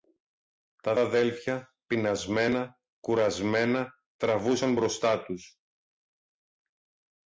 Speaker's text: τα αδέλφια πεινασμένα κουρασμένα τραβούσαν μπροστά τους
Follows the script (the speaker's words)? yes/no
yes